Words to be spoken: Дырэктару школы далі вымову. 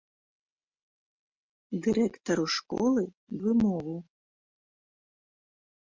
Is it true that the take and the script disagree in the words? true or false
true